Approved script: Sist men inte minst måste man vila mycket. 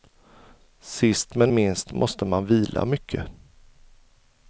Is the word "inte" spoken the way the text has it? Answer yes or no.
no